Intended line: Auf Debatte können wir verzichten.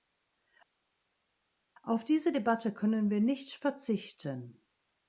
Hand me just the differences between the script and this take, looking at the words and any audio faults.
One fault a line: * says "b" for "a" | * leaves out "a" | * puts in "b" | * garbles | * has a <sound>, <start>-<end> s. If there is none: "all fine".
* puts in "diese"
* puts in "nicht"